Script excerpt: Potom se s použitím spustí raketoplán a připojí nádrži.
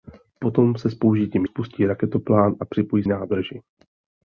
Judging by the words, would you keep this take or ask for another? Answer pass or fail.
pass